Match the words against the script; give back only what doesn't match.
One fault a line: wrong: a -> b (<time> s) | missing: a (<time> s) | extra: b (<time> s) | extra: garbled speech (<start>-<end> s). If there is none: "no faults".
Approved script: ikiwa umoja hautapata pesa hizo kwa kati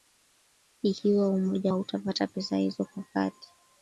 no faults